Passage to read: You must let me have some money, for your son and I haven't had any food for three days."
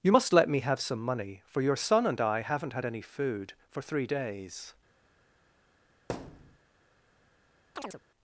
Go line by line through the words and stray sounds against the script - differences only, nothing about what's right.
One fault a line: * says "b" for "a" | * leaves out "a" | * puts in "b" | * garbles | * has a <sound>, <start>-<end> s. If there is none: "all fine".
* has a thud, 6.1-6.6 s
* has a chirp, 7.8-8.0 s